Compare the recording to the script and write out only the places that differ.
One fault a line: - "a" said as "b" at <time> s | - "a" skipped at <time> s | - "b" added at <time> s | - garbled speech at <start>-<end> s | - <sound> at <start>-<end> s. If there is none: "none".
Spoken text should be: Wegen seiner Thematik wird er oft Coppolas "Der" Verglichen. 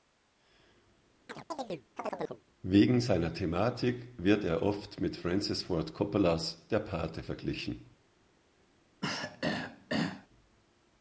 - chirp at 1.3-2.4 s
- "mit Francis Ford" added at 5.0 s
- "Pate" added at 6.8 s
- throat clearing at 9.0-10.3 s